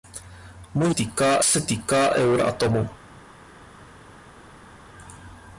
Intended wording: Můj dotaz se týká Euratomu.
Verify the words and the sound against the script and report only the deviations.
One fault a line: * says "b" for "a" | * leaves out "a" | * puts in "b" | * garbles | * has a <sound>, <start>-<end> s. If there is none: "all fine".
* says "týká" for "dotaz"